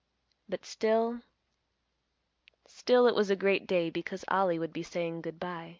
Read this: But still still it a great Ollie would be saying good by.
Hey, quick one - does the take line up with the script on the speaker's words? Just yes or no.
no